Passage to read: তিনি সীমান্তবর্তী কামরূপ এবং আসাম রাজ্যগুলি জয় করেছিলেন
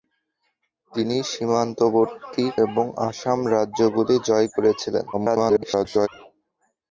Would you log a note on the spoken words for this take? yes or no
yes